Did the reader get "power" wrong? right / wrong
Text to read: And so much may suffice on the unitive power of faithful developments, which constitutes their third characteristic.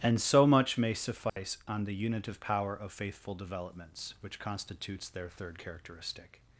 right